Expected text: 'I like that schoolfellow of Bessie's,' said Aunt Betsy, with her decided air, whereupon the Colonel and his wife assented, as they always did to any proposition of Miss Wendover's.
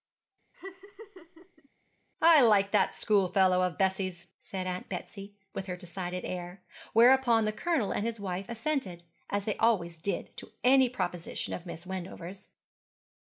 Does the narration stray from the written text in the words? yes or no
no